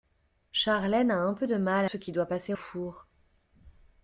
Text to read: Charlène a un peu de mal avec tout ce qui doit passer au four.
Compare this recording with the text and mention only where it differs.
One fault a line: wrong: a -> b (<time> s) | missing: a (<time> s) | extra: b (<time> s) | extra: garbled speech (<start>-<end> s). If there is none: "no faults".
missing: avec tout (1.9 s)
missing: au (2.5 s)